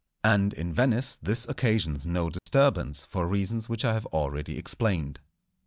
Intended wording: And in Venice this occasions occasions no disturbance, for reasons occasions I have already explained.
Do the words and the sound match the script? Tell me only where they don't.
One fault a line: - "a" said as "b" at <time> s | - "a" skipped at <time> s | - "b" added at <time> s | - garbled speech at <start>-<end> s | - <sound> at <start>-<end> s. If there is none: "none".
- "occasions" skipped at 2.1 s
- dropout at 2.4-2.5 s
- "occasions" said as "which" at 3.7 s